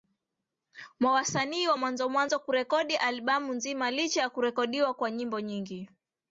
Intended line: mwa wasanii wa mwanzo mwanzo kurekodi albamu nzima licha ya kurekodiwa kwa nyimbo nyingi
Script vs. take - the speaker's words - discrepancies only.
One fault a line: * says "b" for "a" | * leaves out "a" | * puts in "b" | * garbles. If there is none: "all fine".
all fine